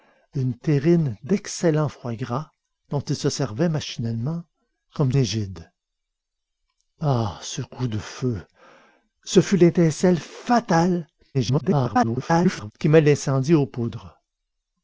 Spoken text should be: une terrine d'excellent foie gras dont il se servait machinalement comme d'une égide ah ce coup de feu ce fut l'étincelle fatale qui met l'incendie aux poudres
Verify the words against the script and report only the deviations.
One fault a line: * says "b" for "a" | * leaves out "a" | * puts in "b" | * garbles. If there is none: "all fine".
* leaves out "d'une"
* garbles